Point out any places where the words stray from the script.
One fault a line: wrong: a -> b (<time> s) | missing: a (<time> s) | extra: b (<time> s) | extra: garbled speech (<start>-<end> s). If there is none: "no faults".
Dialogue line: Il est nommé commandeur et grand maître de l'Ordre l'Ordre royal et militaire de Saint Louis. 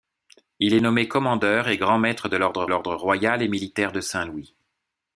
no faults